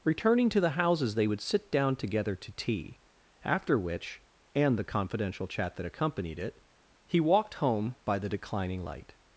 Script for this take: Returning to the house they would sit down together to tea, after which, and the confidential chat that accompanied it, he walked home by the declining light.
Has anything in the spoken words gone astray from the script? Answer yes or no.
yes